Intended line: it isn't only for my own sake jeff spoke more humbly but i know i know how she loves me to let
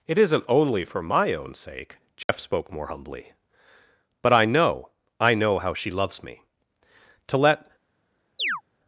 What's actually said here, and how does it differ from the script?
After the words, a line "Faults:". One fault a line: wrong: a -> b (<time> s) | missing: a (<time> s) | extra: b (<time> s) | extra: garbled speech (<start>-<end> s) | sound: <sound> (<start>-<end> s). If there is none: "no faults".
it isn't only for my own sake jeff spoke more humbly but i know i know how she loves me to let
Faults:
sound: dropout (2.2-2.3 s)
sound: chirp (8.4-8.6 s)